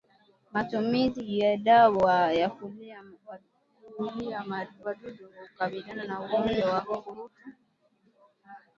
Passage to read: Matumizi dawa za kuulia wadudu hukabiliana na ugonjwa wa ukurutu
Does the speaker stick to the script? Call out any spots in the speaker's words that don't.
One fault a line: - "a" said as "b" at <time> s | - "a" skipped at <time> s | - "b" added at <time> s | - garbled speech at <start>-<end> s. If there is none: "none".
- "ya" added at 1.4 s